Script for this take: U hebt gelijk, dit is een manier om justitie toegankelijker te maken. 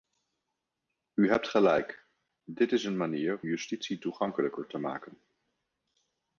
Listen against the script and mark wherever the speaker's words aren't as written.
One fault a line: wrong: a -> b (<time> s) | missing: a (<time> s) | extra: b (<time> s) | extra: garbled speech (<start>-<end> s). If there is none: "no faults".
missing: om (3.4 s)